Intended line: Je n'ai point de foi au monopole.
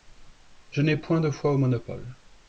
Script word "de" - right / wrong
right